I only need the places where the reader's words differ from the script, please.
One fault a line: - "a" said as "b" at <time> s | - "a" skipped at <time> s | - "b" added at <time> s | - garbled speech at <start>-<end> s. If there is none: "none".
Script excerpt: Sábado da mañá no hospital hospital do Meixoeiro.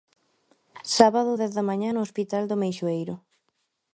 - "dez" added at 1.4 s
- "hospital" skipped at 2.4 s